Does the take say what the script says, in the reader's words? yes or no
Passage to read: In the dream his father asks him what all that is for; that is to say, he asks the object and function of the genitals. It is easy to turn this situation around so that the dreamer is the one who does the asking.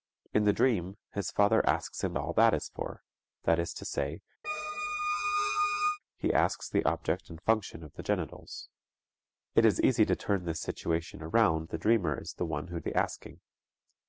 no